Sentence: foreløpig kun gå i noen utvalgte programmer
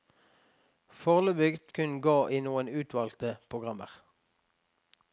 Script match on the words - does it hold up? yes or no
yes